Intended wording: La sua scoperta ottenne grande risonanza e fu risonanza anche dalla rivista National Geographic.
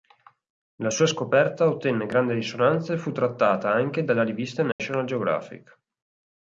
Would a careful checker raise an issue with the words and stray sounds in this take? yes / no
yes